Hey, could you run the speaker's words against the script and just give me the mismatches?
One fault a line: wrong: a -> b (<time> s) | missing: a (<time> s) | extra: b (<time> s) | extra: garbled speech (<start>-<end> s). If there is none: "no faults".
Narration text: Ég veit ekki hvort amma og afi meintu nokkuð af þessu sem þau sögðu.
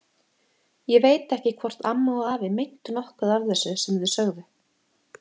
no faults